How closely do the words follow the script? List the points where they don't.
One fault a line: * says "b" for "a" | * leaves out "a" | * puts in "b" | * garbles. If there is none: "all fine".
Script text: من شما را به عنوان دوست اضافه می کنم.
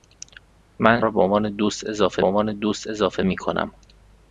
* leaves out "شما"
* puts in "عنوان دوست اضافه"